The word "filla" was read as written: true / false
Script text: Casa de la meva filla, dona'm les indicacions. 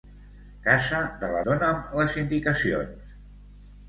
false